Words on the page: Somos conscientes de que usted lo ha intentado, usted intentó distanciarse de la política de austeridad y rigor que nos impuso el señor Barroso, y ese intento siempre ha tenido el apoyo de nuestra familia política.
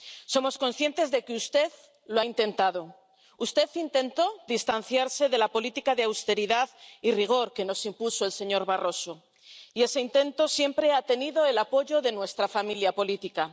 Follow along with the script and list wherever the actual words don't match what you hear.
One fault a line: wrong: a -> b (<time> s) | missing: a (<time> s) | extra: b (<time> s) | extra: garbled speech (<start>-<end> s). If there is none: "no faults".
no faults